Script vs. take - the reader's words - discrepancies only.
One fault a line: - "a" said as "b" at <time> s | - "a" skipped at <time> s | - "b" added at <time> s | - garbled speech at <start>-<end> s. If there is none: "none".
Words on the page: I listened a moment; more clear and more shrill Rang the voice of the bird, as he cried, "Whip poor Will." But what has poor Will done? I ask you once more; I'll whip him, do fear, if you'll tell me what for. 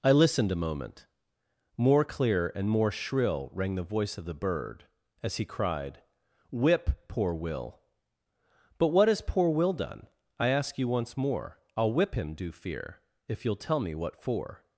none